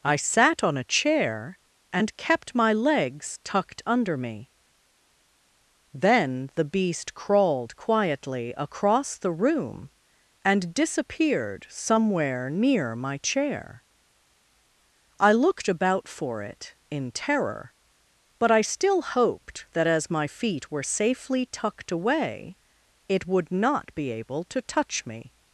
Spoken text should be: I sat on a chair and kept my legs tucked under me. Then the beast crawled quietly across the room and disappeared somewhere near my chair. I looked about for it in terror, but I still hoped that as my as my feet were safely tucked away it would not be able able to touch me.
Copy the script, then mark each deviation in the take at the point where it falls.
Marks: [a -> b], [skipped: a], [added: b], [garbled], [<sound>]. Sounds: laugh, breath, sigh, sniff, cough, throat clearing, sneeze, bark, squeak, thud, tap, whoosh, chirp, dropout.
I sat on a chair and kept my legs tucked under me. Then the beast crawled quietly across the room and disappeared somewhere near my chair. I looked about for it in terror, but I still hoped that as my [skipped: as my] feet were safely tucked away it would not be able [skipped: able] to touch me.